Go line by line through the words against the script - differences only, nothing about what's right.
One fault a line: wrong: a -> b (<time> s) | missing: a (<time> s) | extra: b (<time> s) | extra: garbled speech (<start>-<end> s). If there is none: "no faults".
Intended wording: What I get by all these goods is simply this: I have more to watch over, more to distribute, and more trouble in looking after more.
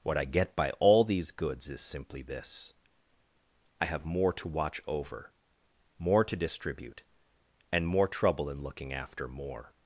no faults